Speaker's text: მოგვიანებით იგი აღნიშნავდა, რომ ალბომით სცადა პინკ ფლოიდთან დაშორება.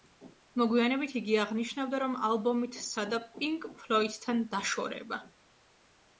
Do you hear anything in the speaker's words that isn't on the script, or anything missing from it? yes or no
no